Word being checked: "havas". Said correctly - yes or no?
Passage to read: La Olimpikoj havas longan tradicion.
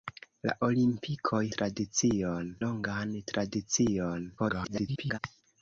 no